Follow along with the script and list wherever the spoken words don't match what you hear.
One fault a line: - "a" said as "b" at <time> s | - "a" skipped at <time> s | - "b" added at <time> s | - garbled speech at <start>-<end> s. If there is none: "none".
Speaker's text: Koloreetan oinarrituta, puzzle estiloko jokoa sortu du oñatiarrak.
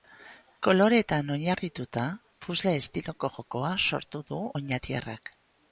none